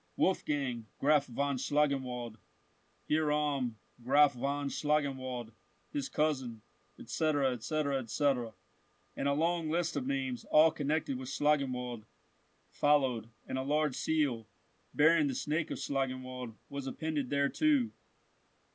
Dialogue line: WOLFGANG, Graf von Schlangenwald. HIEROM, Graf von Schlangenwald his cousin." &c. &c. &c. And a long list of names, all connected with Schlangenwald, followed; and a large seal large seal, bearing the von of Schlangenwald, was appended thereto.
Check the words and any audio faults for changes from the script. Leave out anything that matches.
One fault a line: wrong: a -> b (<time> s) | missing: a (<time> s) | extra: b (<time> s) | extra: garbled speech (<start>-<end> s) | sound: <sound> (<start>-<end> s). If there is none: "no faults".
missing: large seal (14.5 s)
wrong: von -> snake (15.3 s)